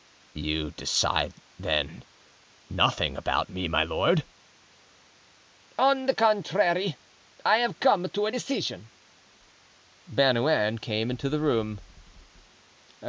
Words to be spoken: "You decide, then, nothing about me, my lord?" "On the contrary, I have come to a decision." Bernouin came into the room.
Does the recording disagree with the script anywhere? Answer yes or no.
no